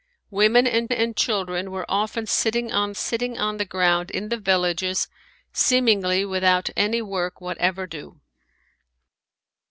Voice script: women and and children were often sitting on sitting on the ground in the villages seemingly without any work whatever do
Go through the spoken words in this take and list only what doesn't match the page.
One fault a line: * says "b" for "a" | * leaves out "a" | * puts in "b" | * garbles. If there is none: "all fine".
all fine